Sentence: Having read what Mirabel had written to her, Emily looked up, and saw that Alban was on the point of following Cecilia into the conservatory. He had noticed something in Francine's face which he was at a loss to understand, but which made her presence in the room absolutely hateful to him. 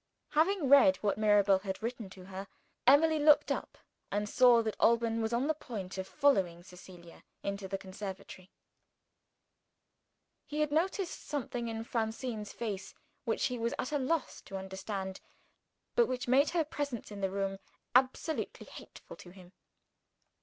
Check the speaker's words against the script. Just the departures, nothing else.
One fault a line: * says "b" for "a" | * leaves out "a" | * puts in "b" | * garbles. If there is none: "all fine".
all fine